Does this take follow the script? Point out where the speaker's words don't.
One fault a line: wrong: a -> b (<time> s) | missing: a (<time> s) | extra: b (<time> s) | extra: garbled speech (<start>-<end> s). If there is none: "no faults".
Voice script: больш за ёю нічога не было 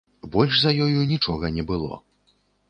no faults